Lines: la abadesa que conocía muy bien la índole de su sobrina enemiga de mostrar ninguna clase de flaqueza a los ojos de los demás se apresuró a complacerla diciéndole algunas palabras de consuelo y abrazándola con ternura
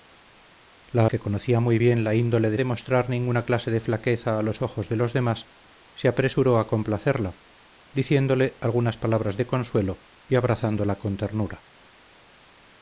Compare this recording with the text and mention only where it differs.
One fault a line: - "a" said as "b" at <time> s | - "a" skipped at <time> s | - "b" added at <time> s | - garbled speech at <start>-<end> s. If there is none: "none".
- "abadesa" skipped at 1.1 s
- "su sobrina enemiga" skipped at 2.6 s